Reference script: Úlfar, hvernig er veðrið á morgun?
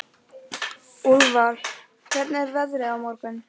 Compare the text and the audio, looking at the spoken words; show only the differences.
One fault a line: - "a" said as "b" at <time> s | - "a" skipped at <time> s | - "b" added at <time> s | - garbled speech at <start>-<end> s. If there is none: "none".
none